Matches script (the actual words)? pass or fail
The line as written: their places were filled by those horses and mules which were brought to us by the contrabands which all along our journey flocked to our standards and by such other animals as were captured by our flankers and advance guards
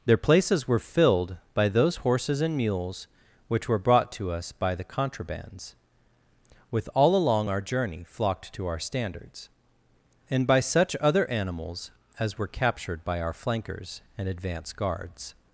fail